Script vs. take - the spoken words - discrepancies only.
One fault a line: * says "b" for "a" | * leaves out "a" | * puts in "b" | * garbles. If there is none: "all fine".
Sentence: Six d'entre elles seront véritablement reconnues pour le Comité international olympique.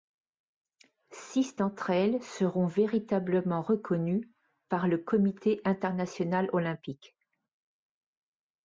* says "par" for "pour"